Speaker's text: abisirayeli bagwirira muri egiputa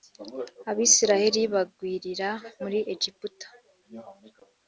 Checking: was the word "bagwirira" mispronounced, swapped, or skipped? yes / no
no